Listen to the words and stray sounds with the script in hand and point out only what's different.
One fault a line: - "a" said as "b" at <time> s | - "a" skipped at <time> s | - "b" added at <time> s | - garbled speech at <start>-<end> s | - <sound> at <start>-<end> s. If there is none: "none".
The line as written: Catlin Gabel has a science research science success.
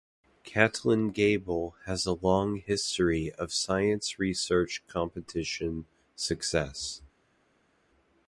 - "long history of" added at 2.1 s
- "science" said as "competition" at 4.9 s